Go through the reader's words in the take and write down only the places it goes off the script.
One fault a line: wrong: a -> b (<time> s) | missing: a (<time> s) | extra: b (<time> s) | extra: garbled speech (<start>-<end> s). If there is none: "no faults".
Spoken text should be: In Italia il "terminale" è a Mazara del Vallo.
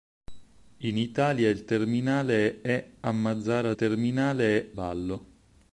wrong: del -> terminale (3.7 s)